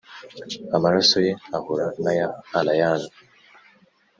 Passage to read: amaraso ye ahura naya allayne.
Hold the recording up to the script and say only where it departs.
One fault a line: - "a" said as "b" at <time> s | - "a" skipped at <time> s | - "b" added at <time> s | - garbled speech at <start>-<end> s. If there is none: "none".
none